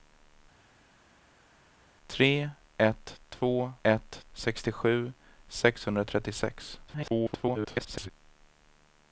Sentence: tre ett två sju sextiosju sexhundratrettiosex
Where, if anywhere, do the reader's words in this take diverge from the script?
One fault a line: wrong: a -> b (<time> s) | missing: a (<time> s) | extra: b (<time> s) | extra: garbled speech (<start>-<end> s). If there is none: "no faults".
wrong: sju -> ett (3.8 s)
extra: garbled speech (6.9-8.1 s)